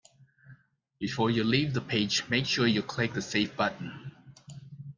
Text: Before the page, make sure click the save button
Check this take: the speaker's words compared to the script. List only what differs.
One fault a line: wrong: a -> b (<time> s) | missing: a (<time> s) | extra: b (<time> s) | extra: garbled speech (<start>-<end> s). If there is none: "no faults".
extra: you leave (1.3 s)
extra: you (2.7 s)